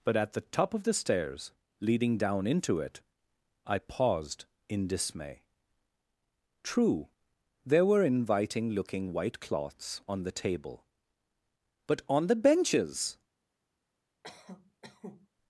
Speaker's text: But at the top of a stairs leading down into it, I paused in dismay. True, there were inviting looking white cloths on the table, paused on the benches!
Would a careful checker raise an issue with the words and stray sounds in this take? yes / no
yes